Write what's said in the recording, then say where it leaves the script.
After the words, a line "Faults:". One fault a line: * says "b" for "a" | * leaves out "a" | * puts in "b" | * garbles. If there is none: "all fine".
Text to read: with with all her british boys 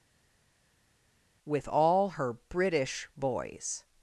with all her british boys
Faults:
* leaves out "with"